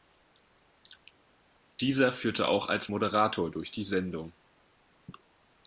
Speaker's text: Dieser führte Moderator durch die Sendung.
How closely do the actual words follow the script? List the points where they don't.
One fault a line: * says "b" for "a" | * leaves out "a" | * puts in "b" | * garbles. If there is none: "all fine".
* puts in "auch als"